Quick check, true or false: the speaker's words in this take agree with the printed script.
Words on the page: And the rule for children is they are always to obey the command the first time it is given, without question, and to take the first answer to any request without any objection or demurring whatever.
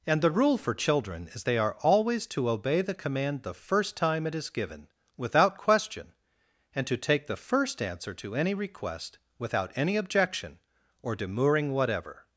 true